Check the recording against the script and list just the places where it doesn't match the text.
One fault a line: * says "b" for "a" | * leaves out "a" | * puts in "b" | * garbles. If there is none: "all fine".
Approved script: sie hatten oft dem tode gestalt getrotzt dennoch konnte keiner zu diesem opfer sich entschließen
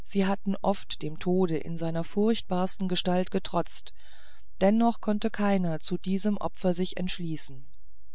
* puts in "in seiner furchtbarsten"